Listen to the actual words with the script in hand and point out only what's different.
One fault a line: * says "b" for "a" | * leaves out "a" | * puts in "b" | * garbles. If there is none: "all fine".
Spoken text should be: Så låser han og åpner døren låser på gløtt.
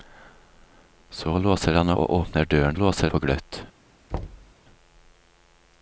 all fine